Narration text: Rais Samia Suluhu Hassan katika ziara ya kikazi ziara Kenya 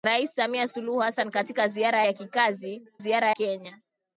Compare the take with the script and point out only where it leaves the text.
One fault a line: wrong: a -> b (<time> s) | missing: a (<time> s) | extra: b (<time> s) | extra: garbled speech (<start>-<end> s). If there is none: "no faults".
no faults